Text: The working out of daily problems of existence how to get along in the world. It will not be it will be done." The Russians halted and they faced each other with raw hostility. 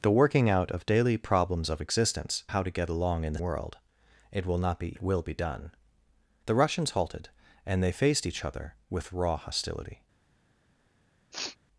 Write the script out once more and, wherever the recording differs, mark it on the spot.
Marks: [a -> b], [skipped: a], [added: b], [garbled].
The working out of daily problems of existence how to get along in the world. It will not be it will be done." The Russians halted and they faced each other with raw hostility.